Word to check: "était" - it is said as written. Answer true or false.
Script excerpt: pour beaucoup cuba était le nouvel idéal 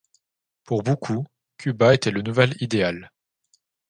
true